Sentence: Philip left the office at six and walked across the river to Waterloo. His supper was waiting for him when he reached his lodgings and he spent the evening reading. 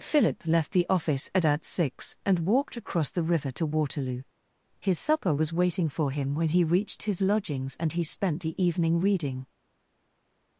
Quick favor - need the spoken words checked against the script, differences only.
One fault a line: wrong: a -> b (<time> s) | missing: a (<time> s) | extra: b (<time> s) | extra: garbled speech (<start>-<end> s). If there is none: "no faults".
extra: at (1.4 s)